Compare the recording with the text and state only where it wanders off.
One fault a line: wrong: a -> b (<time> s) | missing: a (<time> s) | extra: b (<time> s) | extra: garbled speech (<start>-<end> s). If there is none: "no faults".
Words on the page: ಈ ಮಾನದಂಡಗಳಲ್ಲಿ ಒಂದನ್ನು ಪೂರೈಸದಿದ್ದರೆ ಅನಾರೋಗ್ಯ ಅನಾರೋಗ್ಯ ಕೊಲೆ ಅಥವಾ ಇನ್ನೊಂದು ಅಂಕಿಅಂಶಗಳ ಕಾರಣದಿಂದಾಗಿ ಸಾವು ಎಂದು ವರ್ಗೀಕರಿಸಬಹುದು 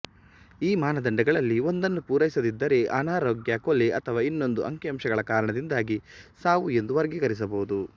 missing: ಅನಾರೋಗ್ಯ (3.6 s)